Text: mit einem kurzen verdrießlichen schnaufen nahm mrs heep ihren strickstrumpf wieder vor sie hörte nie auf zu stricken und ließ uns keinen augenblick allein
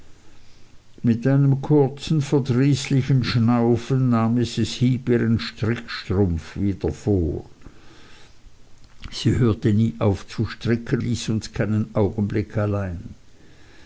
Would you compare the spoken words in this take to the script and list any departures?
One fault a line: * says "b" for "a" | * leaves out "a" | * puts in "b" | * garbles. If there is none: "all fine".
* leaves out "und"